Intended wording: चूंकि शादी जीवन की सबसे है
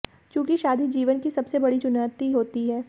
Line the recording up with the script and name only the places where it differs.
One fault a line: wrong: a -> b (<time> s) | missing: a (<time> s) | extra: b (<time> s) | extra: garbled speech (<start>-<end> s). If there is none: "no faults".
extra: बड़ी चुनौती होती (1.6 s)